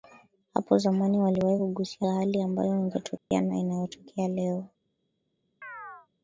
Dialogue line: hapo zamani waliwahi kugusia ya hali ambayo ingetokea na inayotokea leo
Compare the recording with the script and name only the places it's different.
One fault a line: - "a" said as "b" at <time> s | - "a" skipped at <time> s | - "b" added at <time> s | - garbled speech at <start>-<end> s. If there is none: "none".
none